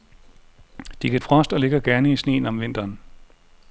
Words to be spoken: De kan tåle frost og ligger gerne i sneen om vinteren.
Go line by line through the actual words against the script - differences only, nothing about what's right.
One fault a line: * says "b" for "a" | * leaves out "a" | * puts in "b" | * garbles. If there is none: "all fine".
* leaves out "tåle"